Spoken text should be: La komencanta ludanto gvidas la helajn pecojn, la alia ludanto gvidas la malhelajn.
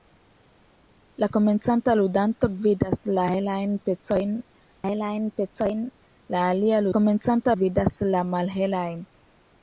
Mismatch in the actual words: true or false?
true